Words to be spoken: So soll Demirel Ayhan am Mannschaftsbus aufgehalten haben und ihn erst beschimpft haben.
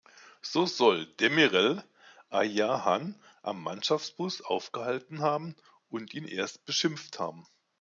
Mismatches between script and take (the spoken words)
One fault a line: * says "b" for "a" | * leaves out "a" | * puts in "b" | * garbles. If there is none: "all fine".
all fine